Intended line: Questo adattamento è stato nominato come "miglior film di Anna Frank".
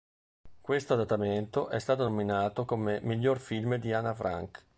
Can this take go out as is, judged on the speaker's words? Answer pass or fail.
pass